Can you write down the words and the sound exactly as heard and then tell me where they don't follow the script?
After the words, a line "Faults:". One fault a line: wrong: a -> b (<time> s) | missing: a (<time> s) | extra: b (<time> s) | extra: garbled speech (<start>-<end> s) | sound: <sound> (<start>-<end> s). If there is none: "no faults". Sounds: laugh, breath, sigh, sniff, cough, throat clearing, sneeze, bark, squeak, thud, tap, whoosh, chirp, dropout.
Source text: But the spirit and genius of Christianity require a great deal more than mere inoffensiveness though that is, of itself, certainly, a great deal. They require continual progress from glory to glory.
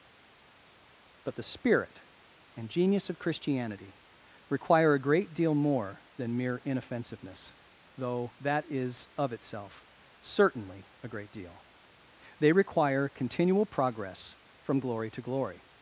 But the spirit and genius of Christianity require a great deal more than mere inoffensiveness though that is, of itself, certainly, a great deal. They require continual progress from glory to glory.
Faults:
no faults